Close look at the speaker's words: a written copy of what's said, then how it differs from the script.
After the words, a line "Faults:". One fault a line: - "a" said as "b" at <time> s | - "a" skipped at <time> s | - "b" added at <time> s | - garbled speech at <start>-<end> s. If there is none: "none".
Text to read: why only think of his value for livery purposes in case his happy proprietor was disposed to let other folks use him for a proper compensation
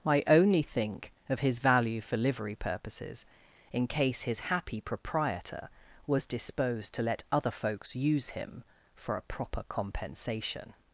i only think of his value for livery purposes in case his happy proprietor was disposed to let other folks use him for a proper compensation
Faults:
- "why" said as "i" at 0.1 s